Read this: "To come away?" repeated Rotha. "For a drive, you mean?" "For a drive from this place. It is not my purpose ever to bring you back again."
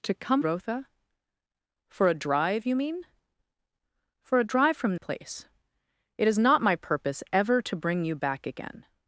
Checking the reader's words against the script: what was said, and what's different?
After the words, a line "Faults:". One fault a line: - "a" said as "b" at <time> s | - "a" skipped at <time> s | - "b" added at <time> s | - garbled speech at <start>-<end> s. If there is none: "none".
"To come Rotha. "For a drive, you mean?" "For a drive from place. It is not my purpose ever to bring you back again."
Faults:
- "away repeated" skipped at 0.4 s
- "this" skipped at 5.0 s